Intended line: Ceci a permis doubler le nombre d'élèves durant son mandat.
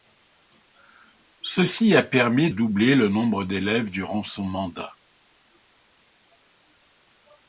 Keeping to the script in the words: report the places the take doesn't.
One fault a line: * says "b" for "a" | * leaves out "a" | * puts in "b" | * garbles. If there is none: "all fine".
all fine